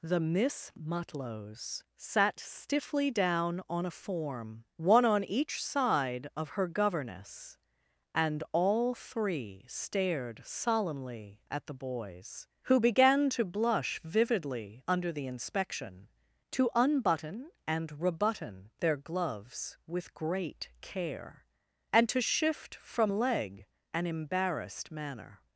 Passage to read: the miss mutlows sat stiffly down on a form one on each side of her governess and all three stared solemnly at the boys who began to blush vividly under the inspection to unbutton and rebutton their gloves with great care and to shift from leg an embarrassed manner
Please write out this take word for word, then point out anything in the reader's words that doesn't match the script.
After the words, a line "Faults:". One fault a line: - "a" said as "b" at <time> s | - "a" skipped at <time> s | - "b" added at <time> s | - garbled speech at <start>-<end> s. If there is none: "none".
the miss mutlows sat stiffly down on a form one on each side of her governess and all three stared solemnly at the boys who began to blush vividly under the inspection to unbutton and rebutton their gloves with great care and to shift from leg an embarrassed manner
Faults:
none